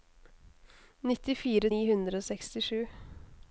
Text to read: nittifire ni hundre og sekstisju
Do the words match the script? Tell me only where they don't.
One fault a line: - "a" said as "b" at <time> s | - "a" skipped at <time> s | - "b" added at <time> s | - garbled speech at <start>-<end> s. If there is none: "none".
none